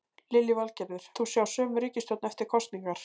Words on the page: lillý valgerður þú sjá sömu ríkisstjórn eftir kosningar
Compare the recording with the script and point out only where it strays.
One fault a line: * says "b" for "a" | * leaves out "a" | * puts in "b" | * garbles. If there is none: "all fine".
all fine